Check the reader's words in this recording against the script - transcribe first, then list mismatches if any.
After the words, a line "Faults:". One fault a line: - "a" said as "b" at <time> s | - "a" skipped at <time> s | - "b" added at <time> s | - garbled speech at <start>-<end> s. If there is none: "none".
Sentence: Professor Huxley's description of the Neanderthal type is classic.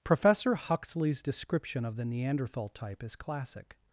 Professor Huxley's description of the Neanderthal type is classic.
Faults:
none